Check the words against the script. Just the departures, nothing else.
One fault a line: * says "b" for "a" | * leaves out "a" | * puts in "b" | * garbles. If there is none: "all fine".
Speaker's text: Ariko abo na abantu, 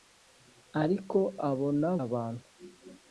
all fine